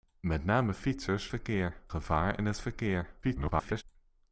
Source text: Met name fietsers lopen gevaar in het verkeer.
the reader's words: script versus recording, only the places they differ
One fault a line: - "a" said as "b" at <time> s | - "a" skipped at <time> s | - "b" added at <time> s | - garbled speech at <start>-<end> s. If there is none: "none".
- "lopen" said as "verkeer" at 1.3 s
- garbled speech at 3.2-3.8 s